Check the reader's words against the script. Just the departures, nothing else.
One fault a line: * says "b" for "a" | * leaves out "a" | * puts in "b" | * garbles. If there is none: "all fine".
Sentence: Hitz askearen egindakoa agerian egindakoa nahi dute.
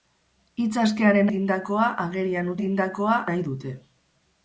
all fine